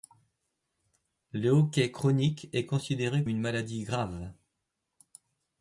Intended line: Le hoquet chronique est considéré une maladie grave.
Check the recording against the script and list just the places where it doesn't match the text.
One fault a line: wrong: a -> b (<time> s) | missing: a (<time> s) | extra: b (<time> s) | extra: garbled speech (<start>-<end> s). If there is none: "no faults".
no faults